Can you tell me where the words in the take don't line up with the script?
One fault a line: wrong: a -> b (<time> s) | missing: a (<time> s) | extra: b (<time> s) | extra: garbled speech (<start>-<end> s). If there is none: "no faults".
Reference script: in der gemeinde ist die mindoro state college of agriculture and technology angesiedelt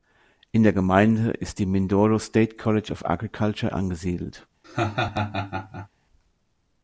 missing: and technology (3.7 s)